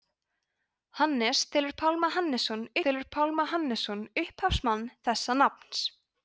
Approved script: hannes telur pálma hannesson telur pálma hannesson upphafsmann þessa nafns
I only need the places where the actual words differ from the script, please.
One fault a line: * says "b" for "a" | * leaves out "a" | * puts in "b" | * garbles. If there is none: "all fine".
all fine